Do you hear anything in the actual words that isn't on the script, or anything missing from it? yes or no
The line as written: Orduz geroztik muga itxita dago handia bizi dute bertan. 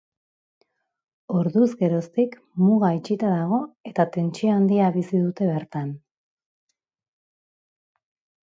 yes